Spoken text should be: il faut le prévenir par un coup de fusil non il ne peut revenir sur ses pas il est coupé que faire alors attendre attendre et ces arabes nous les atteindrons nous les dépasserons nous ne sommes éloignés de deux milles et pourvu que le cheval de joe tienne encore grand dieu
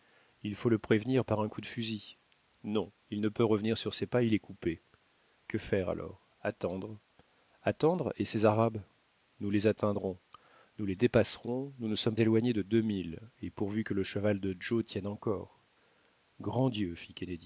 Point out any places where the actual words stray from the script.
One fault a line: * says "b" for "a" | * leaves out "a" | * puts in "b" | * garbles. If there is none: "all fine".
all fine